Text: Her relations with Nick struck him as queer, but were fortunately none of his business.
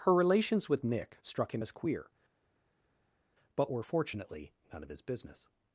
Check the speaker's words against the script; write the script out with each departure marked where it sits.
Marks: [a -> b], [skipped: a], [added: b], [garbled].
Her relations with Nick struck him as queer, but were fortunately none of his business.